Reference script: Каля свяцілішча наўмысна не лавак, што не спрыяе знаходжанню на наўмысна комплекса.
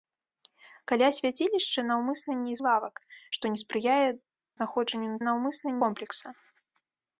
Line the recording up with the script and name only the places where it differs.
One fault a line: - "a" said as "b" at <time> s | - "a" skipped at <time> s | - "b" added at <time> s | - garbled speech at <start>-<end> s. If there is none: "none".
none